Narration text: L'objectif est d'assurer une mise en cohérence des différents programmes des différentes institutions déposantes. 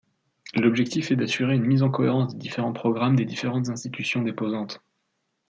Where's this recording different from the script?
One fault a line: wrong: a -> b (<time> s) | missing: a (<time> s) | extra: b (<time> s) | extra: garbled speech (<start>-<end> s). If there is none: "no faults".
no faults